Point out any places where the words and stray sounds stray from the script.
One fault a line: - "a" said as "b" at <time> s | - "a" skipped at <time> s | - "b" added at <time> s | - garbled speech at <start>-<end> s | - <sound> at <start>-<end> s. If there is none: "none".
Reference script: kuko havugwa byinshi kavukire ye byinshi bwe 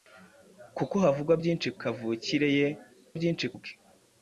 none